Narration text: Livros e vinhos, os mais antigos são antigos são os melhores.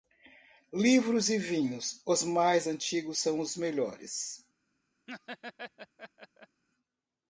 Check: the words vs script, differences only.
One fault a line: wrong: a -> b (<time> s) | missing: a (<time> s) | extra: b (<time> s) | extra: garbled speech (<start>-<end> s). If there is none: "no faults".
missing: antigos são (3.4 s)